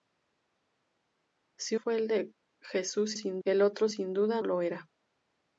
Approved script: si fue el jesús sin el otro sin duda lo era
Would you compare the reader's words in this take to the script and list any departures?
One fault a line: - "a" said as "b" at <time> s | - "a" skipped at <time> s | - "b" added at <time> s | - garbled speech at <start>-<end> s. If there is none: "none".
none